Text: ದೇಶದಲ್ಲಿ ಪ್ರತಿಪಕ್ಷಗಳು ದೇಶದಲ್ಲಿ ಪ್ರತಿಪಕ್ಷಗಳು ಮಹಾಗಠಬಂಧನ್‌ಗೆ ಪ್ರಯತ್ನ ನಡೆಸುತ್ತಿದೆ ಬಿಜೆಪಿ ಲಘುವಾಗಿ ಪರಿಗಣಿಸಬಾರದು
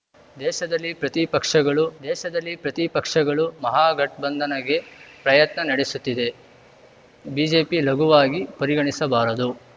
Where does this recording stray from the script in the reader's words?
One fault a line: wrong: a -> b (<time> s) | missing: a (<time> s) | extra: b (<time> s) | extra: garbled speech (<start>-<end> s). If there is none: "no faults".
no faults